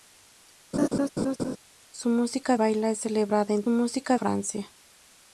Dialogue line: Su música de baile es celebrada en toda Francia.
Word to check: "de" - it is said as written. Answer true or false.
false